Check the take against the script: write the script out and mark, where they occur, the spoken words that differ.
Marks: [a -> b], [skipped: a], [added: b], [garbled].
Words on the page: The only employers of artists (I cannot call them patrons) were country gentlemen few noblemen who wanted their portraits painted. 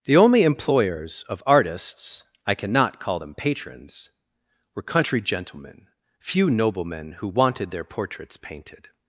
The only employers of artists (I cannot call them patrons) were country gentlemen few noblemen who wanted their portraits painted.